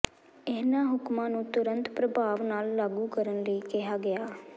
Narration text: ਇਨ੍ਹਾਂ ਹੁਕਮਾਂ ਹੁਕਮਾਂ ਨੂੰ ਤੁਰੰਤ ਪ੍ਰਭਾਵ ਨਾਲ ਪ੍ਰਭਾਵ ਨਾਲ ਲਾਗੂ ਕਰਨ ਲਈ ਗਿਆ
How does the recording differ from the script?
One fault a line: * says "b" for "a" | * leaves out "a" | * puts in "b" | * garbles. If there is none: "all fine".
* leaves out "ਹੁਕਮਾਂ"
* leaves out "ਪ੍ਰਭਾਵ ਨਾਲ"
* puts in "ਕਿਹਾ"